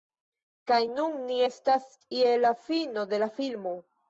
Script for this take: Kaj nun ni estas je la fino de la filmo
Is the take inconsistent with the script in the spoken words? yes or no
no